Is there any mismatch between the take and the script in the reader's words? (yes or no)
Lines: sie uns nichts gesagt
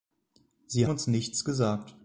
no